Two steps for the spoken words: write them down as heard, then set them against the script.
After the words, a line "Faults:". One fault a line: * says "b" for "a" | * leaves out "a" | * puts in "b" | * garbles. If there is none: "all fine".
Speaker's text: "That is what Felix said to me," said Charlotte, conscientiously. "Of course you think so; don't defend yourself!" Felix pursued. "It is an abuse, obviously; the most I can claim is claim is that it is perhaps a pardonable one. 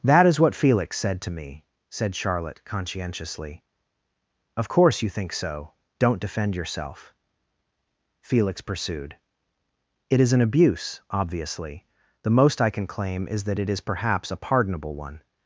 "That is what Felix said to me," said Charlotte, conscientiously. "Of course you think so; don't defend yourself!" Felix pursued. "It is an abuse, obviously; the most I can claim is that it is perhaps a pardonable one.
Faults:
* leaves out "claim is"